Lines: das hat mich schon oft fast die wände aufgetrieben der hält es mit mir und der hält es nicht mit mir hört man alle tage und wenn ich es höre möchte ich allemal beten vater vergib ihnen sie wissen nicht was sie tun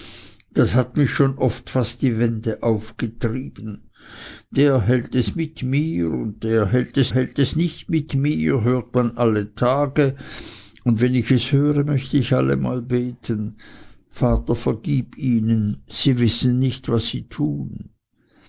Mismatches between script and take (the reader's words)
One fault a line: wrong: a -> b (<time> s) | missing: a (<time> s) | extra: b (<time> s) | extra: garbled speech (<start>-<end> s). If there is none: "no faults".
extra: hält es (7.1 s)